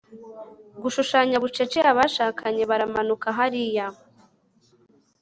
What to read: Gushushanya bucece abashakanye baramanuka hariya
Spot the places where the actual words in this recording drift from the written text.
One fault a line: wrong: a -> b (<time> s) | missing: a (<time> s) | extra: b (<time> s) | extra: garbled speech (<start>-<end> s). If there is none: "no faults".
no faults